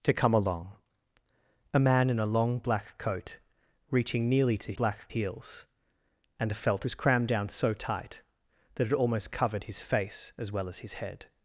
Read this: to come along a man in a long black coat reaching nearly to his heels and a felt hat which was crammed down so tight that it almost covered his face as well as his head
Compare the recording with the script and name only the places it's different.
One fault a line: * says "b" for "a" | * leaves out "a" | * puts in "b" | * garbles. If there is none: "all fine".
* says "black" for "his"
* leaves out "hat which"